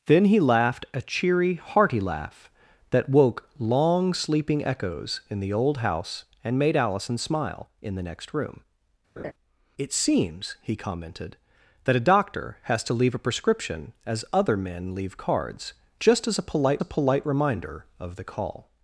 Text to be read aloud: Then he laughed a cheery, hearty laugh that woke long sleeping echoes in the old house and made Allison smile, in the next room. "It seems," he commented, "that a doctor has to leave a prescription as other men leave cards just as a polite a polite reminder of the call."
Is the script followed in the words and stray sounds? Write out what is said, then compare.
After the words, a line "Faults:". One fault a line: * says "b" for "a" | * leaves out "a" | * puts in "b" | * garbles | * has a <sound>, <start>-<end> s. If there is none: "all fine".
Then he laughed a cheery, hearty laugh that woke long sleeping echoes in the old house and made Allison smile, in the next room. "It seems," he commented, "that a doctor has to leave a prescription as other men leave cards just as a polite a polite reminder of the call."
Faults:
* has a laugh, 9.2-9.3 s